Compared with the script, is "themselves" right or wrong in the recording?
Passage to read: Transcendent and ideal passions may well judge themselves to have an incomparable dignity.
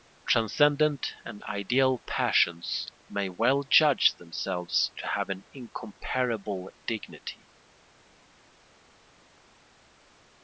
right